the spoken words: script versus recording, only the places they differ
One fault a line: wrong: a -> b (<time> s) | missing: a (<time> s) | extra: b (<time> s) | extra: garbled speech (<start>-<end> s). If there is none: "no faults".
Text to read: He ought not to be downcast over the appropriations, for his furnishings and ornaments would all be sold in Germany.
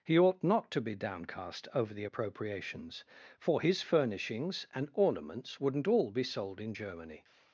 wrong: would -> wouldn't (5.6 s)